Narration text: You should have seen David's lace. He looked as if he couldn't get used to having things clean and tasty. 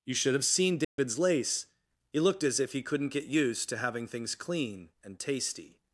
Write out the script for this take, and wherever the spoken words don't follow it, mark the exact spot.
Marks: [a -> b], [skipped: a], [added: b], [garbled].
You should have seen David's lace. He looked as if he couldn't get used to having things clean and tasty.